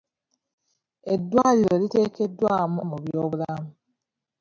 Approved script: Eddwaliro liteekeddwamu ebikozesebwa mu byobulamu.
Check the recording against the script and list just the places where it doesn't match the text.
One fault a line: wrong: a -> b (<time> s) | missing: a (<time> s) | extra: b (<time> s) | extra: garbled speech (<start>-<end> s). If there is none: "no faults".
missing: ebikozesebwa (2.8 s)